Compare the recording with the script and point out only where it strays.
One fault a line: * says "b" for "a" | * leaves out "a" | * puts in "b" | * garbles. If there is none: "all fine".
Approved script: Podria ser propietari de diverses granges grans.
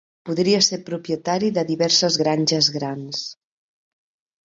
all fine